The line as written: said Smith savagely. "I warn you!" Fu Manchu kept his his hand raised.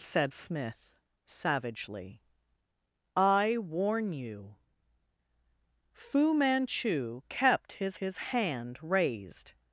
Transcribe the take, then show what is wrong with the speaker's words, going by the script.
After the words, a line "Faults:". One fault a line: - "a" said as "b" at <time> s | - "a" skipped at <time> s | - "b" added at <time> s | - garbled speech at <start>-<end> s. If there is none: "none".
said Smith savagely. "I warn you!" Fu Manchu kept his his hand raised.
Faults:
none